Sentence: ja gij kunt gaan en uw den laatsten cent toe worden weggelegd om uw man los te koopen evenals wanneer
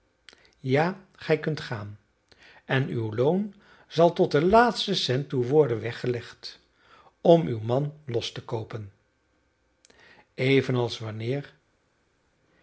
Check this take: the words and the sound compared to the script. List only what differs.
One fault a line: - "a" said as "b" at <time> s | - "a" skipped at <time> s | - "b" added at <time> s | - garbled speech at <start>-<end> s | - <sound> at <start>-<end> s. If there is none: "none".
- "loon zal tot" added at 3.1 s